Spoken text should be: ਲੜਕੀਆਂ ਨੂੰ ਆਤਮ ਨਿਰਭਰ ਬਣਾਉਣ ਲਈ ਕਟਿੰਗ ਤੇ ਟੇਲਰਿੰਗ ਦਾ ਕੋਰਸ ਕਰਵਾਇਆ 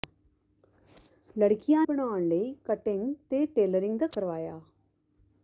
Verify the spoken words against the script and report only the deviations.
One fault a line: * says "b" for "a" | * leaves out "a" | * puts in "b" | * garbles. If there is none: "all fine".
* leaves out "ਨੂੰ ਆਤਮ ਨਿਰਭਰ"
* leaves out "ਕੋਰਸ"